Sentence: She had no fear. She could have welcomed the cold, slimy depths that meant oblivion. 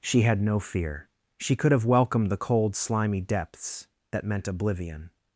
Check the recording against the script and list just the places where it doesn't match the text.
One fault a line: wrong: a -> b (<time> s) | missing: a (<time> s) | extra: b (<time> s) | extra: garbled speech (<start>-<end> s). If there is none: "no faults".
no faults